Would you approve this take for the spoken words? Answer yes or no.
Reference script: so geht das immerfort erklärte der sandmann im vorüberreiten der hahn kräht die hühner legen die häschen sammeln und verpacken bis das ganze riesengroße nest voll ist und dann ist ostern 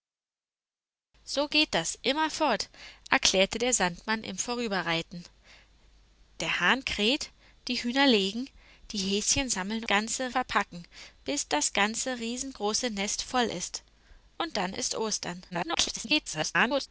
no